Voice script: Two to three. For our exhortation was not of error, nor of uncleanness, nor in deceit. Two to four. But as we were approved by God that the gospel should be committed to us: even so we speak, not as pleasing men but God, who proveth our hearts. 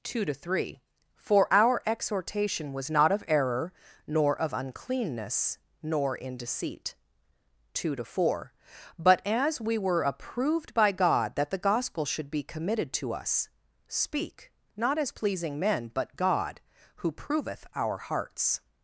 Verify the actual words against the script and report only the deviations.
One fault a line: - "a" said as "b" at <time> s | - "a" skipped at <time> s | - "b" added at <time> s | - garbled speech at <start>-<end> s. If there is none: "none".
- "even so we" skipped at 13.5 s